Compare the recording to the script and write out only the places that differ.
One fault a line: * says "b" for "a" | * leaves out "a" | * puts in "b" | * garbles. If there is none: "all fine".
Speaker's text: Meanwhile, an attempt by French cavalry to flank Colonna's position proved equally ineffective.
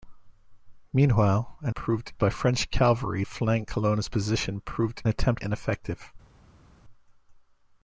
* says "proved" for "attempt"
* leaves out "to"
* says "attempt" for "equally"